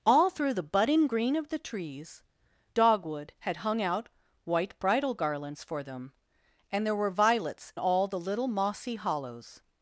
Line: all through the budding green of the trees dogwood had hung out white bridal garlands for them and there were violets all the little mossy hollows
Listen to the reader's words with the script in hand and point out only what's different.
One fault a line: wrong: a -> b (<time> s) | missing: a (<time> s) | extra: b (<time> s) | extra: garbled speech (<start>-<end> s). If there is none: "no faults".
no faults